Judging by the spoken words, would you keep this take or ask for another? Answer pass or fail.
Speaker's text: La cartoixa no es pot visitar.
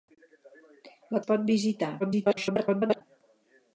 fail